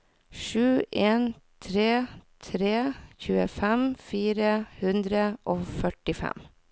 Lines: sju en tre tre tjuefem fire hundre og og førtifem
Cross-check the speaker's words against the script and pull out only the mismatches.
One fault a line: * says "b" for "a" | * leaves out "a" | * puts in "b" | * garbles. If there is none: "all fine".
* leaves out "og"